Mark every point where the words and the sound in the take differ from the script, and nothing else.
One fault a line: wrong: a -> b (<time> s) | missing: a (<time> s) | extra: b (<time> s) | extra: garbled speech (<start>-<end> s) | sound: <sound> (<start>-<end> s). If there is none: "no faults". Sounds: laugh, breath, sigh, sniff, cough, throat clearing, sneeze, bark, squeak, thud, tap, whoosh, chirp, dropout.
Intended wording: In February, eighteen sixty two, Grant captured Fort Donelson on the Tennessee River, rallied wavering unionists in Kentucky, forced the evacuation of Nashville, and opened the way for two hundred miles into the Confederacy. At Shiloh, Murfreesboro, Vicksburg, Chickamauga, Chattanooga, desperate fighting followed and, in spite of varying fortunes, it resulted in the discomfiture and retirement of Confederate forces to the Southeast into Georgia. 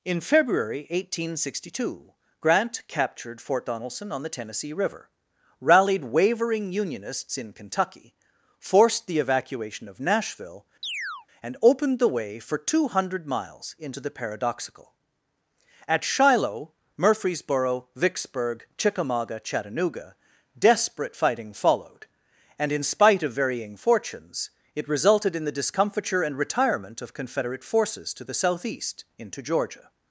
sound: chirp (10.8-11.3 s)
wrong: Confederacy -> Paradoxical (14.1 s)